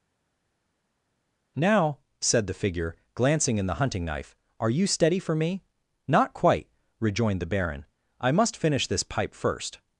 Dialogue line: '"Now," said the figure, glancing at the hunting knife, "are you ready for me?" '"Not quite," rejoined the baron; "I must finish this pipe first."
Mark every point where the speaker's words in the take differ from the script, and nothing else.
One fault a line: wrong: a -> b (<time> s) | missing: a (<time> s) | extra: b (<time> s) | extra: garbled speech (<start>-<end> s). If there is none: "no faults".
wrong: at -> in (3.6 s)
wrong: ready -> steady (4.9 s)